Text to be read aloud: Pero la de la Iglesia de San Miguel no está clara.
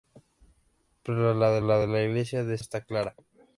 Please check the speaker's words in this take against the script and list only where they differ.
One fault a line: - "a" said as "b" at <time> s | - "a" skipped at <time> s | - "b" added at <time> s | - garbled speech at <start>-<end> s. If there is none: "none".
- "Iglesia" skipped at 1.8 s
- "San Miguel no" said as "la Iglesia de" at 1.9 s